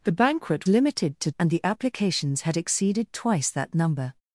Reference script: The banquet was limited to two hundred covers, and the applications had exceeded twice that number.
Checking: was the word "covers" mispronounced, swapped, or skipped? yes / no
yes